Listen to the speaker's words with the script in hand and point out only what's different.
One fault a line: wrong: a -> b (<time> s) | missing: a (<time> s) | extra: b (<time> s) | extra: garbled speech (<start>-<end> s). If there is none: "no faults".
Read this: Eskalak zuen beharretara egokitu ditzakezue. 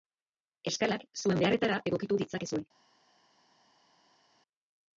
no faults